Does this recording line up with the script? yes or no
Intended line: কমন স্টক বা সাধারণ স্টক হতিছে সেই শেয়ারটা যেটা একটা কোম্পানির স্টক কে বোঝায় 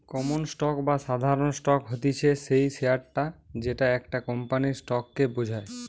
yes